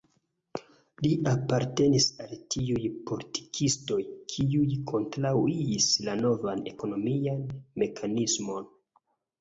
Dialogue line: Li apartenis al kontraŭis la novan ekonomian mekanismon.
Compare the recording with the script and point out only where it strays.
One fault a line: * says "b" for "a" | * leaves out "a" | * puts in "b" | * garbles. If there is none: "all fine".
* puts in "tiuj politikistoj kiuj"